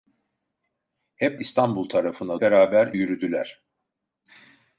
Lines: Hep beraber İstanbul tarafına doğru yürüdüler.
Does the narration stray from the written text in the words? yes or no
yes